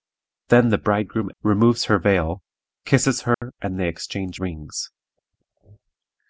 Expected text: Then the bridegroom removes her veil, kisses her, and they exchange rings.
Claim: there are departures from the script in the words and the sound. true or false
true